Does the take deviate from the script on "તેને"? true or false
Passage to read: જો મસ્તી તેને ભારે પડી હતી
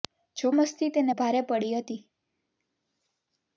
false